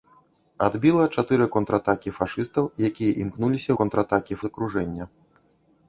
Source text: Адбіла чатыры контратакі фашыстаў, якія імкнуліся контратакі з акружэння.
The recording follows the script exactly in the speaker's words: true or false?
true